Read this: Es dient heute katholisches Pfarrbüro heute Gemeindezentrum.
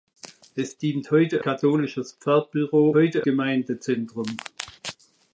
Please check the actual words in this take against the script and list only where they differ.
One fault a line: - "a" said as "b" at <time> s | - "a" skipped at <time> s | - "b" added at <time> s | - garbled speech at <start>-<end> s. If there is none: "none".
none